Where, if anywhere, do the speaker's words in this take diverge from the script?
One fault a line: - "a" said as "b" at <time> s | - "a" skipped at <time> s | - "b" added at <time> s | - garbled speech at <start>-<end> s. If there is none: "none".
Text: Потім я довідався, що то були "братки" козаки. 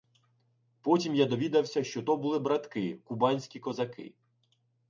- "кубанські" added at 3.0 s